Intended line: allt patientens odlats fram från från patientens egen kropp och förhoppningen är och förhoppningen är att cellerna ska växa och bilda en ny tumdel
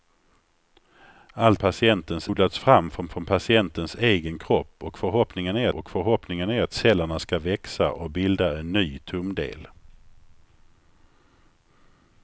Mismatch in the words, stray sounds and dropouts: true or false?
false